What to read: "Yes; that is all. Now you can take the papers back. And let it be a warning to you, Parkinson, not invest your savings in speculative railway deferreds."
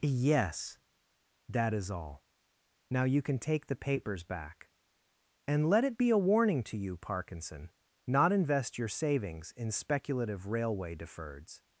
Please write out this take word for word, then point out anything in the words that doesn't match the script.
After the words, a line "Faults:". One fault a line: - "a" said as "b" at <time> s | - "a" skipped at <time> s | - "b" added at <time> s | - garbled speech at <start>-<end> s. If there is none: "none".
"Yes; that is all. Now you can take the papers back. And let it be a warning to you, Parkinson, not invest your savings in speculative railway deferreds."
Faults:
none